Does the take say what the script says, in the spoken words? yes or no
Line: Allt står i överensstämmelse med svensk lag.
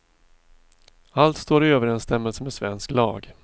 yes